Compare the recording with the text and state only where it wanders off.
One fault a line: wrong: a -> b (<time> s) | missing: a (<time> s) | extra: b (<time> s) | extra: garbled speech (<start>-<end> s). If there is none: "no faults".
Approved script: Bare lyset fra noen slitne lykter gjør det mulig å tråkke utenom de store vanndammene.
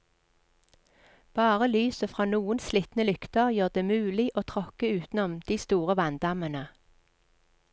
no faults